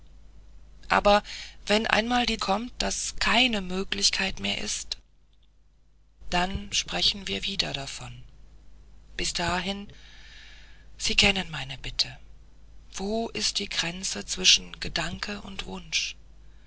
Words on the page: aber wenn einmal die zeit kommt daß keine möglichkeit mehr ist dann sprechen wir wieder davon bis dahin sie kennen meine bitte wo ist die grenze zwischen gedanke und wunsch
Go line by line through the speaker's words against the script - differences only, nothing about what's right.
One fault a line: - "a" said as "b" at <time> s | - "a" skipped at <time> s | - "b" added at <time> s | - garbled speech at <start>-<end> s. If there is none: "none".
- "zeit" skipped at 2.4 s